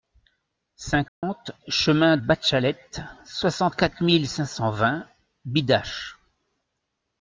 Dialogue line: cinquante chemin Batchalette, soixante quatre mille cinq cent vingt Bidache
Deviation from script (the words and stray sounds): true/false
true